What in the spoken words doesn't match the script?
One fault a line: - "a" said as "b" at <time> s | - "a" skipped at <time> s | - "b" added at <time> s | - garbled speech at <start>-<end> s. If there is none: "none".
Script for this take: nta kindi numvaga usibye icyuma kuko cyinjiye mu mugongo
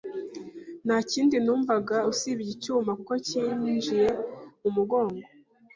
none